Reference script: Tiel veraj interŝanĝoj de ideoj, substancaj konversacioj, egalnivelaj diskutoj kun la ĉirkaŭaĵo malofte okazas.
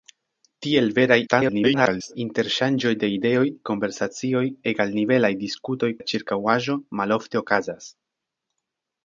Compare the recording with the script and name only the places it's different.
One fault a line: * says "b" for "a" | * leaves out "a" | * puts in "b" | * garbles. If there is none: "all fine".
* garbles
* leaves out "substancaj"
* leaves out "kun"